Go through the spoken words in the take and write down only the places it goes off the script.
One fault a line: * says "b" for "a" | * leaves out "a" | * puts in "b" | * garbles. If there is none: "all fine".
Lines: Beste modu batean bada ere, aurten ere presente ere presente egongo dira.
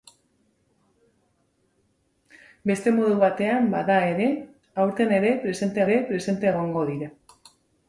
all fine